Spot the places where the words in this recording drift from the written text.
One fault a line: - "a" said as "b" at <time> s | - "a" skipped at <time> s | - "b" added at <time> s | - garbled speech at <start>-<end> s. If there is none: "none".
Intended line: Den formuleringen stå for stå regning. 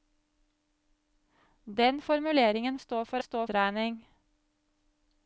none